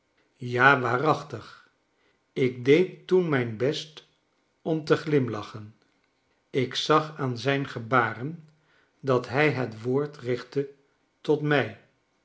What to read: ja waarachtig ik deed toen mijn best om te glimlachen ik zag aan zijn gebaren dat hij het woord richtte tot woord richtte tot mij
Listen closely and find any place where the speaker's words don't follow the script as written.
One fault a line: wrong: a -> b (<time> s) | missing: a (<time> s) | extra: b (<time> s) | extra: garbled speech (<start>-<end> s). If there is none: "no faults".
missing: woord richtte tot (11.4 s)